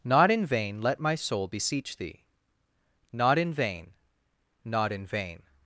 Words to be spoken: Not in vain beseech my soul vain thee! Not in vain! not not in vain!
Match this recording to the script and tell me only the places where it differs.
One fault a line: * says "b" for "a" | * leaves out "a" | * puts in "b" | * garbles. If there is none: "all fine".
* says "let" for "beseech"
* says "beseech" for "vain"
* leaves out "not"